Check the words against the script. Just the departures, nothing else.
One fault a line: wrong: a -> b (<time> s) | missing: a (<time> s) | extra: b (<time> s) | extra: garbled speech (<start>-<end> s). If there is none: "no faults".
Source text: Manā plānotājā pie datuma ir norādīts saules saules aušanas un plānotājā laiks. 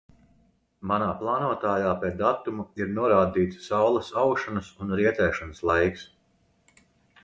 missing: saules (4.2 s)
wrong: plānotājā -> rietēšanas (5.0 s)